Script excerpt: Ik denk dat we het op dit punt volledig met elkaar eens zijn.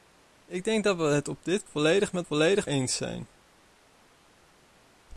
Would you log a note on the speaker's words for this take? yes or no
yes